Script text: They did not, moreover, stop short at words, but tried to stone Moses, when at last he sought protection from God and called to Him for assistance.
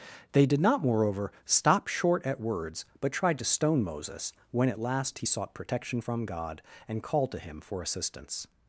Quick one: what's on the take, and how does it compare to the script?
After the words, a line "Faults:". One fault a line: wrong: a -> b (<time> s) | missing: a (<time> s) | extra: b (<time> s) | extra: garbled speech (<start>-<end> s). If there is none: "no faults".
They did not, moreover, stop short at words, but tried to stone Moses, when at last he sought protection from God and called to Him for assistance.
Faults:
no faults